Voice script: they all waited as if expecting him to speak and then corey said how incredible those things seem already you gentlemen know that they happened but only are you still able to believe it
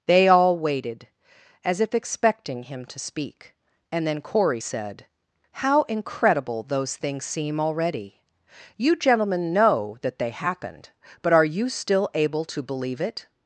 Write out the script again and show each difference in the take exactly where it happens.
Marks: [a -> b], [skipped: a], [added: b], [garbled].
they all waited as if expecting him to speak and then corey said how incredible those things seem already you gentlemen know that they happened but [skipped: only] are you still able to believe it